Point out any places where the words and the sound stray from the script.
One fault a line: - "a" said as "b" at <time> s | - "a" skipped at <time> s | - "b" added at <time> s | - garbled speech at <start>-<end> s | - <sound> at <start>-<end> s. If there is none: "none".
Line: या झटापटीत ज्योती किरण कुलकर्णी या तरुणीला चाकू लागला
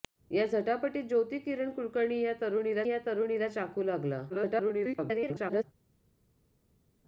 - "या तरुणीला" added at 2.9 s
- garbled speech at 4.3-5.6 s